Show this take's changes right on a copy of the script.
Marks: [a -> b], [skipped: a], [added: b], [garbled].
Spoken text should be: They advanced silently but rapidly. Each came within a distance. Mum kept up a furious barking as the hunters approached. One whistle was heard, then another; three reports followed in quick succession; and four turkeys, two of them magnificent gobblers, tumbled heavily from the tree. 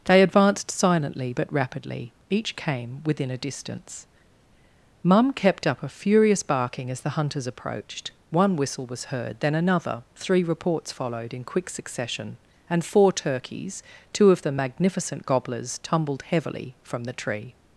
They advanced silently but rapidly. Each came within a distance. Mum kept up a furious barking as the hunters approached. One whistle was heard, then another; three reports followed in quick succession; and four turkeys, two of them magnificent gobblers, tumbled heavily from the tree.